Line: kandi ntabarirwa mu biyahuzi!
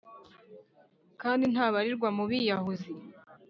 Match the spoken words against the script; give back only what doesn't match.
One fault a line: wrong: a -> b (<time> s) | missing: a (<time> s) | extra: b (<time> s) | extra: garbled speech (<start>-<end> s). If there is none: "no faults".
no faults